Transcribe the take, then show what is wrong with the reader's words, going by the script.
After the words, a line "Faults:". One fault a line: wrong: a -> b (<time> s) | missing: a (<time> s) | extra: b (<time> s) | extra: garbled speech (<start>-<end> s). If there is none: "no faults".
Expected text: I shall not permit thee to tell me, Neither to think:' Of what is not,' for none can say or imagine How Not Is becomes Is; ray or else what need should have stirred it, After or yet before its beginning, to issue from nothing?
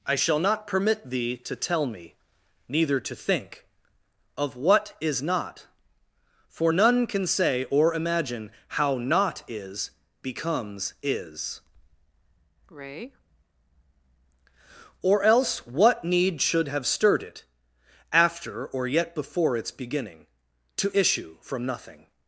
I shall not permit thee to tell me, Neither to think:' Of what is not,' for none can say or imagine How Not Is becomes Is; ray or else what need should have stirred it, After or yet before its beginning, to issue from nothing?
Faults:
no faults